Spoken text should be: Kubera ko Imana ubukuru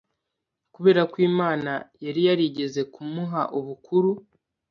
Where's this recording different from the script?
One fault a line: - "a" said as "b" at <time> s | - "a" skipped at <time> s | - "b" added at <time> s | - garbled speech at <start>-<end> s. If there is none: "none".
- "yari yarigeze kumuha" added at 2.0 s